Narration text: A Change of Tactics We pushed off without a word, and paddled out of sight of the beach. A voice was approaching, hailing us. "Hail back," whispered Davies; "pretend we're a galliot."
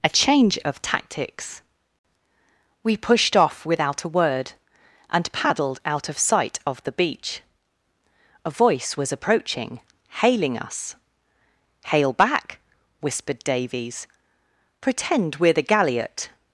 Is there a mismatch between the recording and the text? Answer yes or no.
yes